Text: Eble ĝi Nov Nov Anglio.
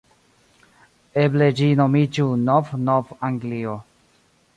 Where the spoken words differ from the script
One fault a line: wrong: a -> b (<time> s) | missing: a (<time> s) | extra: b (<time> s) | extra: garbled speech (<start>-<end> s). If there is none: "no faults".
extra: nomiĝu (1.8 s)